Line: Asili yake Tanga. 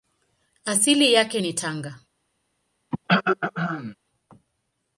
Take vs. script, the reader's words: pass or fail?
fail